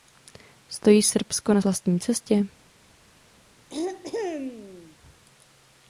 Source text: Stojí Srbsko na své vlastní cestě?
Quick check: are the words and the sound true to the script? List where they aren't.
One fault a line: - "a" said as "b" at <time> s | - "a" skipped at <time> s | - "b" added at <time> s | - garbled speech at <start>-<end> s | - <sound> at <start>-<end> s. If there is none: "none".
- "své" skipped at 1.6 s
- throat clearing at 3.7-5.0 s